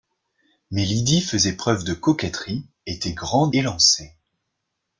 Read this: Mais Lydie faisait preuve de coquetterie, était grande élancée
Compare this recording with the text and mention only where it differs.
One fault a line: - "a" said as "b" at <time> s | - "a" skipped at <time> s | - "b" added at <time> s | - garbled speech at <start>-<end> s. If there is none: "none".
none